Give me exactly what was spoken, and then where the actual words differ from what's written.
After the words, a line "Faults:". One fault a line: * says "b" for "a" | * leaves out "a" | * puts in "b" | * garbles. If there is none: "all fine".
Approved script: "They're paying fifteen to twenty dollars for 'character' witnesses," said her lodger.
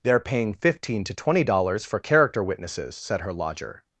"They're paying fifteen to twenty dollars for 'character' witnesses," said her lodger.
Faults:
all fine